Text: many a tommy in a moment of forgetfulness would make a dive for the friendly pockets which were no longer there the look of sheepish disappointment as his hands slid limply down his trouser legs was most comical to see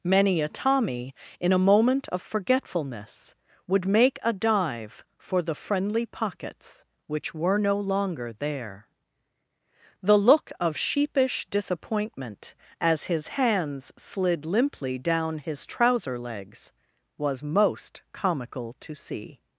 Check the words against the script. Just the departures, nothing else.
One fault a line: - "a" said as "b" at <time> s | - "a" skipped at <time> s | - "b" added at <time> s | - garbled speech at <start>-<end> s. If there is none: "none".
none